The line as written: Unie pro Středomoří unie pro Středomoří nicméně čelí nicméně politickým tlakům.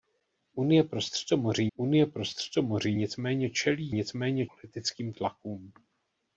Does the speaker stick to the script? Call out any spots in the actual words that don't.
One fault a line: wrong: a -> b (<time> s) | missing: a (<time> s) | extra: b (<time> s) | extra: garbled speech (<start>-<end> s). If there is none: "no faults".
no faults